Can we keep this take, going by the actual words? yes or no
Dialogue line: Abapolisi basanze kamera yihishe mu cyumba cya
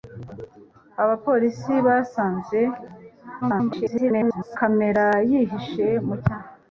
no